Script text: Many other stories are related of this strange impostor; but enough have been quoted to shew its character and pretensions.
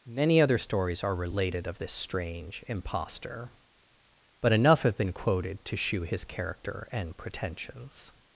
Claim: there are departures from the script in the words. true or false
true